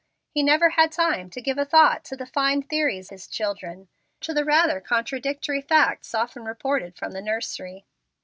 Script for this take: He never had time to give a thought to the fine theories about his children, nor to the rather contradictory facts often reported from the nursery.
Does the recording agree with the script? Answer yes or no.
no